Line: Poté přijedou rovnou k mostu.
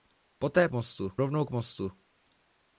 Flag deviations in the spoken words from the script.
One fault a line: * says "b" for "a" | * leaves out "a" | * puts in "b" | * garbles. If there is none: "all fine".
* says "mostu" for "přijedou"